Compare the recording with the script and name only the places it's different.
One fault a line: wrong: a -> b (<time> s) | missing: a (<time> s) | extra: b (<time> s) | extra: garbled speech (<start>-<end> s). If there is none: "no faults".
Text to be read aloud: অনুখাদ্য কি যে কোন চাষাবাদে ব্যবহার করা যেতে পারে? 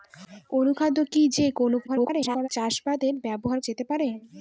extra: garbled speech (1.9-2.5 s)
missing: করা (3.6 s)